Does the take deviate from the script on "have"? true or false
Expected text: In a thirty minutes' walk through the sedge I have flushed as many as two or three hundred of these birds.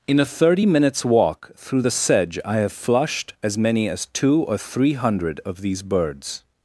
false